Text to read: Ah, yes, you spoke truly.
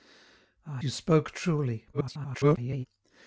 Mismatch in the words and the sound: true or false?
true